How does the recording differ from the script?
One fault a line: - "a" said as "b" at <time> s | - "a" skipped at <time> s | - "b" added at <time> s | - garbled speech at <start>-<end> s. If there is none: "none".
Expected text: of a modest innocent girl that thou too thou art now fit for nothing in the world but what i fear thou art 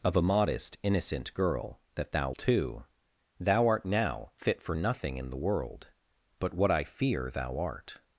none